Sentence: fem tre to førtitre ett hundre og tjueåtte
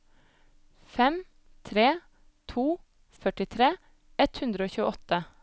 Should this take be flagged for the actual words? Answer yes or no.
no